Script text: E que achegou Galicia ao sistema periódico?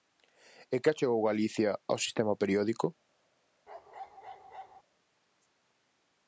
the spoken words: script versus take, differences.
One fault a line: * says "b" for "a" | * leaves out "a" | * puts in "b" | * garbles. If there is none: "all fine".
all fine